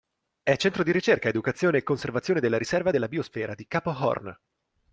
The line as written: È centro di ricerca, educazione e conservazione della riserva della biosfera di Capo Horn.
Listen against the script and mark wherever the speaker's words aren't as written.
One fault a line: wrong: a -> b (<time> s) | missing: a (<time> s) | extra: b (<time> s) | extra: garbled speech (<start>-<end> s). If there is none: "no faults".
no faults